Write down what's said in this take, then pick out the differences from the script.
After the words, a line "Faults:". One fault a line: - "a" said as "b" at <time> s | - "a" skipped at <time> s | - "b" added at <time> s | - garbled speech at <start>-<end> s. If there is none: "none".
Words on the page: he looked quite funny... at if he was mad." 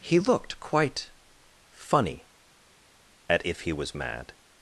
he looked quite funny... at if he was mad."
Faults:
none